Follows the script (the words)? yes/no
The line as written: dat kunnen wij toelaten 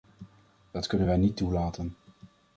no